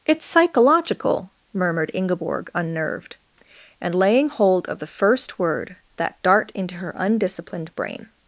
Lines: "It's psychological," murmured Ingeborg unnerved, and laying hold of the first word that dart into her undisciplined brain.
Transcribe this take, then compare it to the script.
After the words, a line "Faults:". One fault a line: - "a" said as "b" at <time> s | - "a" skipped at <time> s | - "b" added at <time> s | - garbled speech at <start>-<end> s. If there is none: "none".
"It's psychological," murmured Ingeborg unnerved, and laying hold of the first word that dart into her undisciplined brain.
Faults:
none